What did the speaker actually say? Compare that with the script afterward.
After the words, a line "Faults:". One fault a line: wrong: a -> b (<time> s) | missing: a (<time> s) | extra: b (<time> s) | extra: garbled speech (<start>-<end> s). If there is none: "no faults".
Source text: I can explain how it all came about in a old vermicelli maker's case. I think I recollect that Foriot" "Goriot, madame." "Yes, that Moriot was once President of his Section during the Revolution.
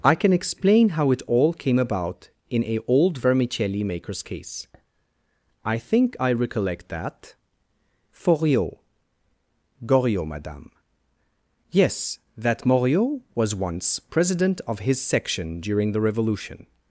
I can explain how it all came about in a old vermicelli maker's case. I think I recollect that Foriot" "Goriot, madame." "Yes, that Moriot was once President of his Section during the Revolution.
Faults:
no faults